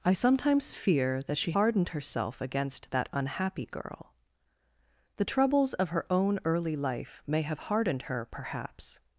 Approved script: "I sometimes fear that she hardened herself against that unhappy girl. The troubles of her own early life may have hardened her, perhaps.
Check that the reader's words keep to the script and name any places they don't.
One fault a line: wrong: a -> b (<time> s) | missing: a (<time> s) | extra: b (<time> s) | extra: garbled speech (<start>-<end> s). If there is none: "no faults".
no faults